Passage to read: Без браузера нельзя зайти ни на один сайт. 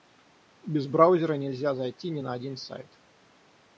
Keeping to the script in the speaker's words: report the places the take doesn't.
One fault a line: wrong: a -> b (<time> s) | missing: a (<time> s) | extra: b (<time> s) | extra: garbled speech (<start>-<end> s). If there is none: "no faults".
no faults